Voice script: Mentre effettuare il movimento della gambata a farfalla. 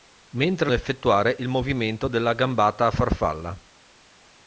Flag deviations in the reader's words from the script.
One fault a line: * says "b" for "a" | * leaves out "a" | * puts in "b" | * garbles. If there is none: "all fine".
all fine